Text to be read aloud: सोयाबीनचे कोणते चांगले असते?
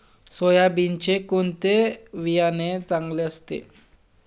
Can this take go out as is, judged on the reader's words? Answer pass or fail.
fail